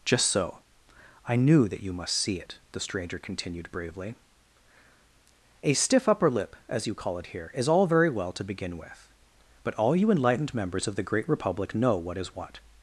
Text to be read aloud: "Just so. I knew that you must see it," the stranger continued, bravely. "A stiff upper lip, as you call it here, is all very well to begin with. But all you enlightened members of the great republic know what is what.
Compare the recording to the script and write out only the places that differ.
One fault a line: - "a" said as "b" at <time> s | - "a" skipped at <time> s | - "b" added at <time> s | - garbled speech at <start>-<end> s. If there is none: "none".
none